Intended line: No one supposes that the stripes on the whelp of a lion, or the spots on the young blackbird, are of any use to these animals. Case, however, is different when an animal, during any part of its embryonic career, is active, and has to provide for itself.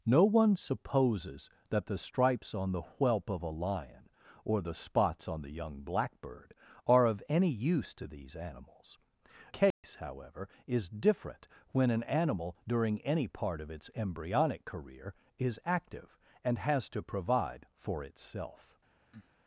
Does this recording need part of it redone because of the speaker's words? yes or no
no